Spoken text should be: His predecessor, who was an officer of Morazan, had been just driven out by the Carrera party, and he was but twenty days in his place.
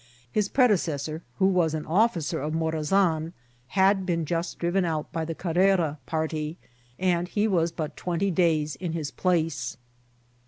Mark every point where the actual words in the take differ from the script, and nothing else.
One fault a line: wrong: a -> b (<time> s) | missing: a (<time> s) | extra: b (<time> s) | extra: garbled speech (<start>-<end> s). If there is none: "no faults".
no faults